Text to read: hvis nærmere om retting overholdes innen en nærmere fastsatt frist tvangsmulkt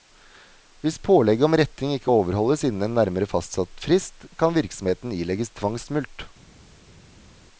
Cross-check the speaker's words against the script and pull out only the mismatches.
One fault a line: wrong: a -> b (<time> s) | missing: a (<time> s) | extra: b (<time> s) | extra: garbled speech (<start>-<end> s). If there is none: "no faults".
wrong: nærmere -> pålegget (1.1 s)
extra: ikke (1.9 s)
extra: kan virksomheten ilegges (4.4 s)